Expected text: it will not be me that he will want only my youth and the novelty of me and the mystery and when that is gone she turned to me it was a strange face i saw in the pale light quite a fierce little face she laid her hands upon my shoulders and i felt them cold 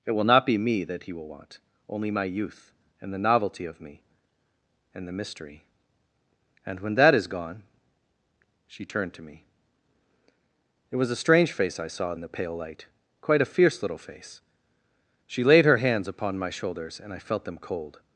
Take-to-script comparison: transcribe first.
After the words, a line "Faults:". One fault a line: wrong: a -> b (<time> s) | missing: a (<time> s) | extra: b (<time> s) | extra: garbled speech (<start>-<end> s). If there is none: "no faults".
it will not be me that he will want only my youth and the novelty of me and the mystery and when that is gone she turned to me it was a strange face i saw in the pale light quite a fierce little face she laid her hands upon my shoulders and i felt them cold
Faults:
no faults